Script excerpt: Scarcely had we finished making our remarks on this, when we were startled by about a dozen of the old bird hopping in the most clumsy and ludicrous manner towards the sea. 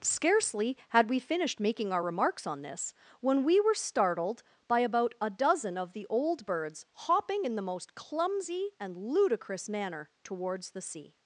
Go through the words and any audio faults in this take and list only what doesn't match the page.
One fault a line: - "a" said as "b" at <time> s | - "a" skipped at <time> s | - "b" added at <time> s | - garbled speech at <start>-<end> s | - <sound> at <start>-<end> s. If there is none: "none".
- "bird" said as "birds" at 6.5 s